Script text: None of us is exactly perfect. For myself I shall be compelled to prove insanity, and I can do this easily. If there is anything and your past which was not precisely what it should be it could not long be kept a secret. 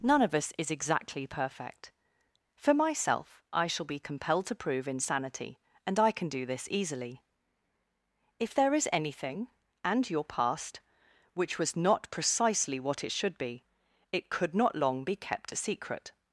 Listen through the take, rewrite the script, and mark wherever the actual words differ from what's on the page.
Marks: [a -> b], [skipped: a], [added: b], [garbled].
None of us is exactly perfect. For myself I shall be compelled to prove insanity, and I can do this easily. If there is anything and your past which was not precisely what it should be it could not long be kept a secret.